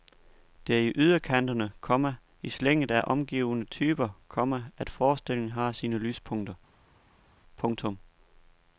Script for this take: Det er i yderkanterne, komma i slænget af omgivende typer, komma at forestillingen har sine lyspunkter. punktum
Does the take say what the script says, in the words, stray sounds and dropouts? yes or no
yes